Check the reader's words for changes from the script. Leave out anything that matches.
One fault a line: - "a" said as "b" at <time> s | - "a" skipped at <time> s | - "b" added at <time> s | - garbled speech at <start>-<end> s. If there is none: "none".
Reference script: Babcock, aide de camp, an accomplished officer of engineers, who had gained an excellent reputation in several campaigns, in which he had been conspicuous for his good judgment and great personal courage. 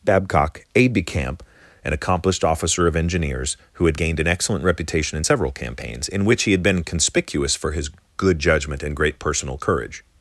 none